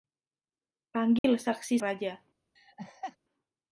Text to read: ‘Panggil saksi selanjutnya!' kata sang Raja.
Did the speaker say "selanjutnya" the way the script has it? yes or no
no